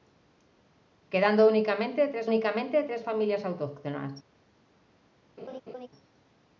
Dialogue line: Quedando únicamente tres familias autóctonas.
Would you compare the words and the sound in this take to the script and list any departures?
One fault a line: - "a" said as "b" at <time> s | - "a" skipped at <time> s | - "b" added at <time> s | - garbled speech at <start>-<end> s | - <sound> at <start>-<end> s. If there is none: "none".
- "únicamente tres" added at 2.2 s
- laugh at 5.4-5.9 s